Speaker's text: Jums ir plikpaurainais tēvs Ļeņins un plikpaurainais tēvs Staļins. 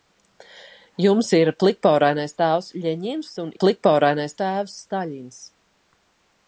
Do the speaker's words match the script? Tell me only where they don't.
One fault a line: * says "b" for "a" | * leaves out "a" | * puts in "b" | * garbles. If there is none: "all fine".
all fine